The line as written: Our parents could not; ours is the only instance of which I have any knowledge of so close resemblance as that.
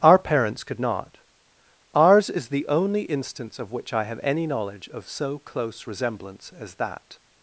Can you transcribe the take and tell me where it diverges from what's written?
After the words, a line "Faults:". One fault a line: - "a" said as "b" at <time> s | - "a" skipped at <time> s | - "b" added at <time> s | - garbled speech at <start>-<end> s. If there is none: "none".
Our parents could not; ours is the only instance of which I have any knowledge of so close resemblance as that.
Faults:
none